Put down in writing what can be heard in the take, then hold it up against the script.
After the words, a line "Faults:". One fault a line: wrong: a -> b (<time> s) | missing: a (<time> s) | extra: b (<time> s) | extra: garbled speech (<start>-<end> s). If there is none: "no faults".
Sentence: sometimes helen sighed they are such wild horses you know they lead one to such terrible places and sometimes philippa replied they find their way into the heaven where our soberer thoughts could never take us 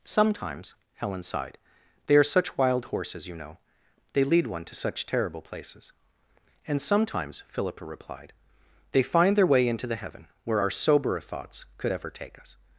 sometimes helen sighed they are such wild horses you know they lead one to such terrible places and sometimes philippa replied they find their way into the heaven where our soberer thoughts could ever take us
Faults:
wrong: never -> ever (11.9 s)